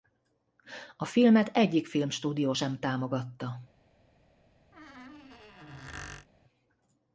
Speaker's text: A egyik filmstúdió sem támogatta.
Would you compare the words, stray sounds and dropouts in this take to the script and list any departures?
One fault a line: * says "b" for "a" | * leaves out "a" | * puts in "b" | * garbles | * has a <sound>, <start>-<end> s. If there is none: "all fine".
* puts in "filmet"
* has a squeak, 4.7-6.3 s